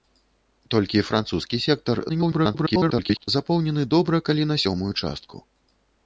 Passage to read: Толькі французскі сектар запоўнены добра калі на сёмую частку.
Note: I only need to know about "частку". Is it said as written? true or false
true